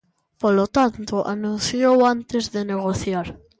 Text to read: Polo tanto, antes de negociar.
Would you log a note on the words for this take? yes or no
yes